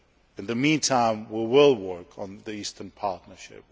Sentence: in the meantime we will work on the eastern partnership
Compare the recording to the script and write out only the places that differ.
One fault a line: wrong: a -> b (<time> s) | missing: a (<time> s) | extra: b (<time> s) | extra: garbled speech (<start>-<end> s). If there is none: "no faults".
no faults